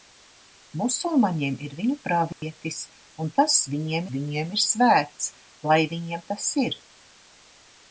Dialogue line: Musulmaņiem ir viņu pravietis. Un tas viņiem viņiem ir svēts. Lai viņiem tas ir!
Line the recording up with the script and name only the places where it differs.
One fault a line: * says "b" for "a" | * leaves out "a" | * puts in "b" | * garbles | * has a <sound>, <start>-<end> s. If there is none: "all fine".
* has a dropout, 2.3-2.4 s